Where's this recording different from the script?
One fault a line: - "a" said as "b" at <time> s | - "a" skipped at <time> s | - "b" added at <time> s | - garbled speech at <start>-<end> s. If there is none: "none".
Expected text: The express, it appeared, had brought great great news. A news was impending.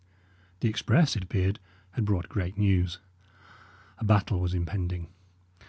- "great" skipped at 2.6 s
- "news" said as "battle" at 4.0 s